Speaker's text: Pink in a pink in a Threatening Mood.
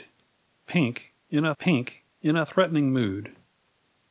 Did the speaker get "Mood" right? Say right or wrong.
right